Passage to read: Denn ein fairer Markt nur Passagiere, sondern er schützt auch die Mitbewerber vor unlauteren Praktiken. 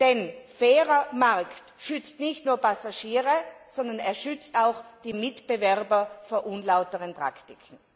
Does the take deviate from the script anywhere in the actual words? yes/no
yes